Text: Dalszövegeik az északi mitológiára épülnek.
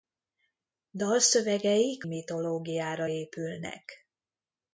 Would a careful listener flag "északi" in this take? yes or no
yes